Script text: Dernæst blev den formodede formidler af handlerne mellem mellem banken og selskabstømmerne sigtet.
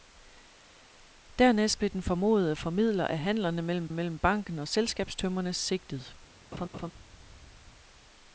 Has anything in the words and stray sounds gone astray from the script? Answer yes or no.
yes